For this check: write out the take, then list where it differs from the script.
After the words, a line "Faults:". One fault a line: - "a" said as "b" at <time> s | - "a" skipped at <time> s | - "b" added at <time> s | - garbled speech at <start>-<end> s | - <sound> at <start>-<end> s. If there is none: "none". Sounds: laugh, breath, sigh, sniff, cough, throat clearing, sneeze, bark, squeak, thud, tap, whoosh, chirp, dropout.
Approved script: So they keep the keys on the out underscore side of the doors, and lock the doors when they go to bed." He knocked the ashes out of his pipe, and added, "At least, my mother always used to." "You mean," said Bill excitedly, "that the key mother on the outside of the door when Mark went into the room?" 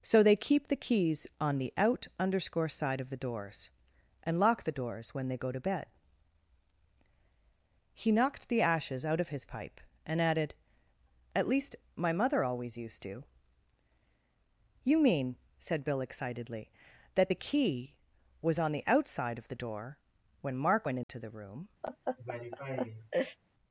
So they keep the keys on the out underscore side of the doors, and lock the doors when they go to bed." He knocked the ashes out of his pipe, and added, "At least, my mother always used to." "You mean," said Bill excitedly, "that the key was on the outside of the door when Mark went into the room?"
Faults:
- "mother" said as "was" at 18.4 s
- dropout at 21.0-21.1 s
- laugh at 21.8-23.4 s